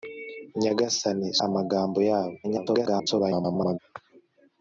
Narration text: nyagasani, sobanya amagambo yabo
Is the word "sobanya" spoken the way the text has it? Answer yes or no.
no